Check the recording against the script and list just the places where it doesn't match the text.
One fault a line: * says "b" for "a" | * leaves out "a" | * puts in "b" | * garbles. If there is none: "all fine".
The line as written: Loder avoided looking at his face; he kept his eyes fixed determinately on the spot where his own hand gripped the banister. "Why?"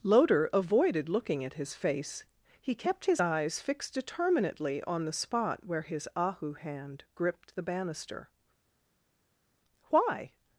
* says "ahu" for "own"